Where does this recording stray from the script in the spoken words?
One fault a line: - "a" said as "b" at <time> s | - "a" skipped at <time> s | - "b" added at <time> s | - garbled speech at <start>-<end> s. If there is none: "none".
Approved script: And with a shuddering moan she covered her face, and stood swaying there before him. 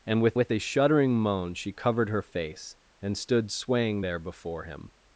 - "with" added at 0.4 s